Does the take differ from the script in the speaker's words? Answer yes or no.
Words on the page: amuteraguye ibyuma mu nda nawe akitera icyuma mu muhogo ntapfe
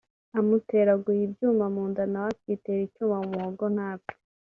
no